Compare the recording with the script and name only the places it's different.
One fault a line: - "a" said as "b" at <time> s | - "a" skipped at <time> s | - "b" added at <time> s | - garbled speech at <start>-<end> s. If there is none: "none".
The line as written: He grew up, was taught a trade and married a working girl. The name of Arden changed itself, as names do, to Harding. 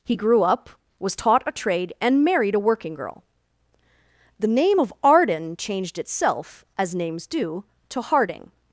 none